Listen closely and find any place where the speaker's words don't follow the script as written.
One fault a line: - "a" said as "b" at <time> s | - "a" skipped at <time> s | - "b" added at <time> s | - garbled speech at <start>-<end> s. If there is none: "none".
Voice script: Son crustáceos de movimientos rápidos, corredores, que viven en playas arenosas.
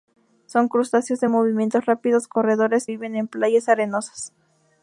- "que" skipped at 2.9 s